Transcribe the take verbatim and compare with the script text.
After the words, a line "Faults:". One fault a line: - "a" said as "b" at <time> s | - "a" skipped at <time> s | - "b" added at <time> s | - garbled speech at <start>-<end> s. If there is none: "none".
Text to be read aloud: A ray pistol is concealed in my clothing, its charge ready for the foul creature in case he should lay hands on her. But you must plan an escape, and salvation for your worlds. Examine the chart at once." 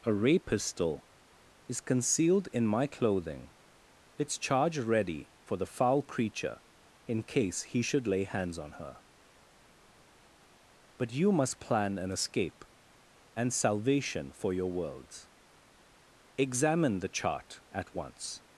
A ray pistol is concealed in my clothing, its charge ready for the foul creature in case he should lay hands on her. But you must plan an escape, and salvation for your worlds. Examine the chart at once."
Faults:
none